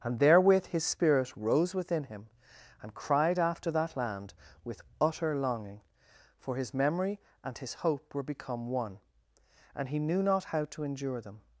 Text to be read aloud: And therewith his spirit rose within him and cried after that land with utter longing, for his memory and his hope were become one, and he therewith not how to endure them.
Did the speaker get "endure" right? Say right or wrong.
right